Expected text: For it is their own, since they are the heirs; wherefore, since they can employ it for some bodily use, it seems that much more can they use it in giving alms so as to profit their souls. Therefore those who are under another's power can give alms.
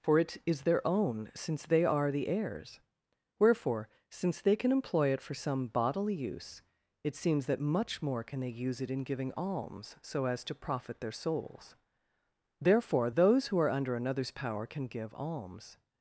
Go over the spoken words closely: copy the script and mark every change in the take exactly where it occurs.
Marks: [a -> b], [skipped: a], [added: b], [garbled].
For it is their own, since they are the heirs; wherefore, since they can employ it for some bodily use, it seems that much more can they use it in giving alms so as to profit their souls. Therefore those who are under another's power can give alms.